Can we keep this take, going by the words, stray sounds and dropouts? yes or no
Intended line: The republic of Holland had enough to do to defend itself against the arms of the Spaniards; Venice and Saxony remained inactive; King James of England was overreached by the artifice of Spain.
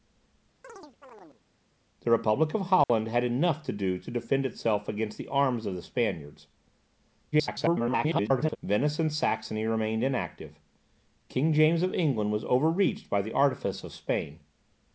no